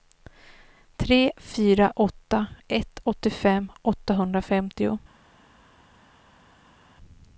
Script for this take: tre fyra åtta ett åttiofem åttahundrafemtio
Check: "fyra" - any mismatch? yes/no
no